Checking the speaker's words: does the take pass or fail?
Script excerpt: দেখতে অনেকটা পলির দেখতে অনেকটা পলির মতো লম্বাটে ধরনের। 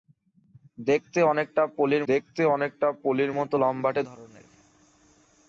pass